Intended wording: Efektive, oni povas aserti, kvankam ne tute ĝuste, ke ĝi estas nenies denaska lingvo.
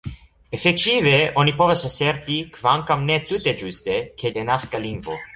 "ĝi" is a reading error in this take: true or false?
true